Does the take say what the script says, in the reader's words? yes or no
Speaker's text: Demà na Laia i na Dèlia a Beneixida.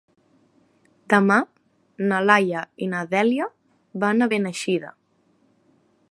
no